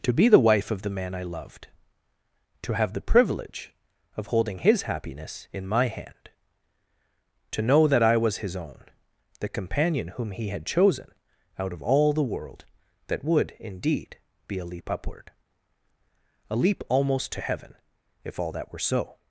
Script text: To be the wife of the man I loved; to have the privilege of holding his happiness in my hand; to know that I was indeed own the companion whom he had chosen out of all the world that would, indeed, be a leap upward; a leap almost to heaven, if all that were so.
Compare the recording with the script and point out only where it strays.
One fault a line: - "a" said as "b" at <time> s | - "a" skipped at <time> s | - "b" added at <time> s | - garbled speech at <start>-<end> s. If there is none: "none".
- "indeed" said as "his" at 8.4 s